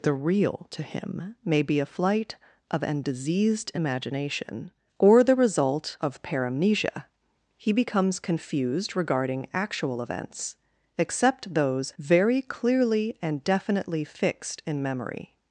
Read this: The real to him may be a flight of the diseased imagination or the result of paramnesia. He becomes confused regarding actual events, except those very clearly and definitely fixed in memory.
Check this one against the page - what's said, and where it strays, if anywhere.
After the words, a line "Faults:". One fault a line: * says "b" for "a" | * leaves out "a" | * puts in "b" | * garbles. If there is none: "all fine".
The real to him may be a flight of an diseased imagination or the result of paramnesia. He becomes confused regarding actual events, except those very clearly and definitely fixed in memory.
Faults:
* says "an" for "the"